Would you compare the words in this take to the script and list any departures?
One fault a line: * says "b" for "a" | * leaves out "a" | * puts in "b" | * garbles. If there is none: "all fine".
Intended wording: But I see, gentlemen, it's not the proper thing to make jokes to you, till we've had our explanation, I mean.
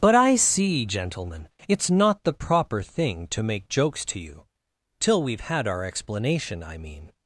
all fine